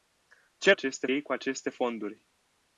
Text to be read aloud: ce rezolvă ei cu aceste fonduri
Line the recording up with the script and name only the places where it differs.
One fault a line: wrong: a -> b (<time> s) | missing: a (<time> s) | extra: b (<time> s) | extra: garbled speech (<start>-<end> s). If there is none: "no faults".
wrong: rezolvă -> aceste (0.7 s)